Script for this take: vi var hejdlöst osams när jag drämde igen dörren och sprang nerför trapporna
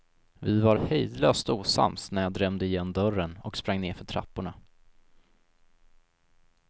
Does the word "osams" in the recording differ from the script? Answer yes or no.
no